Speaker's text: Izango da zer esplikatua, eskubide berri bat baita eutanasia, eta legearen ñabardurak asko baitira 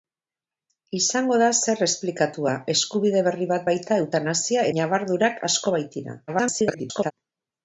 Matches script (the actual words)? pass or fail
fail